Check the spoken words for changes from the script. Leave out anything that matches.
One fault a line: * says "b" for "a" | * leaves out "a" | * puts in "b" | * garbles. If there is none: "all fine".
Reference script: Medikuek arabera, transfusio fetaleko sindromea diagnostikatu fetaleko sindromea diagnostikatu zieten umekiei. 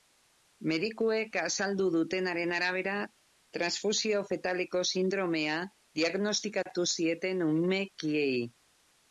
* puts in "azaldu dutenaren"
* leaves out "fetaleko sindromea diagnostikatu"